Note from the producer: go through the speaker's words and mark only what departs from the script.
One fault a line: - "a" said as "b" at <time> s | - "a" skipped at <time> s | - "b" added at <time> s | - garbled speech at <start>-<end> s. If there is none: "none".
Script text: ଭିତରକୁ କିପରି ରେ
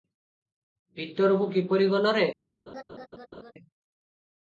- "ଗଲ" added at 1.9 s